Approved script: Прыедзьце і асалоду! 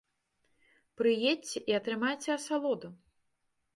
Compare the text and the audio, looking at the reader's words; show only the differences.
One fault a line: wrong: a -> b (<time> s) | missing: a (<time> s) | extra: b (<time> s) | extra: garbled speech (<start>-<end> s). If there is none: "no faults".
extra: атрымайце (1.8 s)